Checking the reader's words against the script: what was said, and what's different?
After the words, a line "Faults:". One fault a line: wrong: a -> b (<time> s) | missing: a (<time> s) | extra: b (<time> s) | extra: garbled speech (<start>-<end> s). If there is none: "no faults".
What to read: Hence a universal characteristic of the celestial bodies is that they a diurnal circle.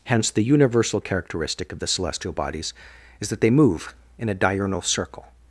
Hence the universal characteristic of the celestial bodies is that they move in a diurnal circle.
Faults:
wrong: a -> the (0.3 s)
extra: move in (3.5 s)